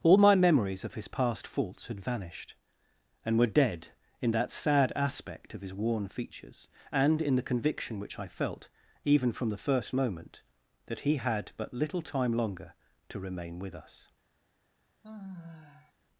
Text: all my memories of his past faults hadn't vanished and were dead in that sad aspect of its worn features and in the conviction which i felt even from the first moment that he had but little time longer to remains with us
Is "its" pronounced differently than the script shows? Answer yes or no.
yes